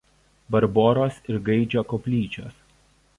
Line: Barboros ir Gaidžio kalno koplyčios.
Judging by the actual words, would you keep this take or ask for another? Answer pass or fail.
fail